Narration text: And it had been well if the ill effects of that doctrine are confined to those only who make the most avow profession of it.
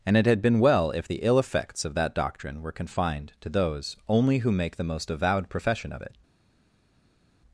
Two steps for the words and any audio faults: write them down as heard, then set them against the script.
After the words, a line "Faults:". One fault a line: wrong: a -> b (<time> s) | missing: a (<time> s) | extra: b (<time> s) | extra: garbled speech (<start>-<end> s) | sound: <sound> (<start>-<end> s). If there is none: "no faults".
And it had been well if the ill effects of that doctrine were confined to those only who make the most avowed profession of it.
Faults:
wrong: are -> were (2.6 s)
wrong: avow -> avowed (5.1 s)